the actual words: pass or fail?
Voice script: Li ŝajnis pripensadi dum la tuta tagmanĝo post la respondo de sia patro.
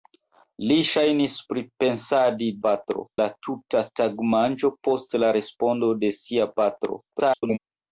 fail